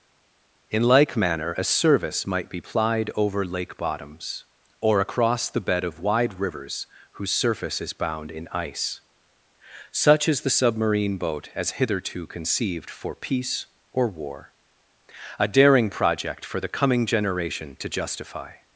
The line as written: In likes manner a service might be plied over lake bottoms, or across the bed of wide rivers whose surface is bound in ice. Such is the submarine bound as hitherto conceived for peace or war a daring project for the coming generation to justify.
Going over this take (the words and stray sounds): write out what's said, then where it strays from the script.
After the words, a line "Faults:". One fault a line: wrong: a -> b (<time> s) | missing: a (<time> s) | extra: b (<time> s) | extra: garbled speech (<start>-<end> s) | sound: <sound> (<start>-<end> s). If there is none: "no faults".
In like manner a service might be plied over lake bottoms, or across the bed of wide rivers whose surface is bound in ice. Such is the submarine boat as hitherto conceived for peace or war a daring project for the coming generation to justify.
Faults:
wrong: likes -> like (0.8 s)
wrong: bound -> boat (11.2 s)